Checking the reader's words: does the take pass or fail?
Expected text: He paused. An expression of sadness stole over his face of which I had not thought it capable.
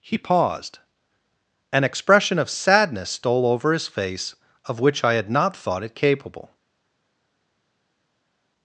pass